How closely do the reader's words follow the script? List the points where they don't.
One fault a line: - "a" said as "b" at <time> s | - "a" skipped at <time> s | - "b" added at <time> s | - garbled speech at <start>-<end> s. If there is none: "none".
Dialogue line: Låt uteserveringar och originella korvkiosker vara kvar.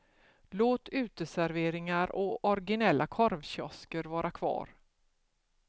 none